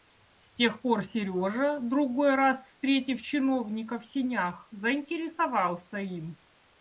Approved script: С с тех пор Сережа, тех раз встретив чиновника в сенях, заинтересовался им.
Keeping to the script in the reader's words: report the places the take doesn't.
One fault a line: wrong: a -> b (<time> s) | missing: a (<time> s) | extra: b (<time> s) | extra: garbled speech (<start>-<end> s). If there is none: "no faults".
missing: с (0.5 s)
wrong: тех -> другой (1.8 s)